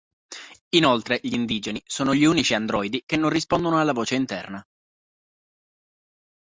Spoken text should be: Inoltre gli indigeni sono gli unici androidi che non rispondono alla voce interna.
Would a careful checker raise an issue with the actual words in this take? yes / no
no